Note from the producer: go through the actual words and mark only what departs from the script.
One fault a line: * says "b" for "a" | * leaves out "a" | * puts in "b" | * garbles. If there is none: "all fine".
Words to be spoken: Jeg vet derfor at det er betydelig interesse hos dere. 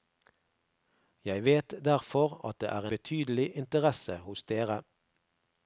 all fine